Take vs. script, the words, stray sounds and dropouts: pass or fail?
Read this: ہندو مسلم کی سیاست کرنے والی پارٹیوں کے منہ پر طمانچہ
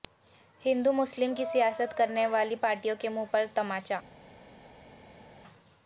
pass